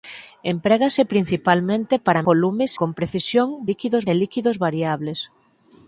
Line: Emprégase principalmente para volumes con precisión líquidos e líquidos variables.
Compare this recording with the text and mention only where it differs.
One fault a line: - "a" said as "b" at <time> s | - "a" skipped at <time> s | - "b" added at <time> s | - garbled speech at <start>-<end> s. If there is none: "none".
none